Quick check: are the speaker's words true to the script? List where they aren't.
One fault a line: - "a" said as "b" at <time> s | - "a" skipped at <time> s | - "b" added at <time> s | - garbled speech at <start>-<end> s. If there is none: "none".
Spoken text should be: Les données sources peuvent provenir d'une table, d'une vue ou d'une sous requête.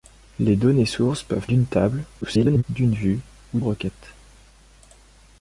- "provenir" skipped at 1.5 s
- garbled speech at 2.2-2.6 s
- "d'une sous" skipped at 3.6 s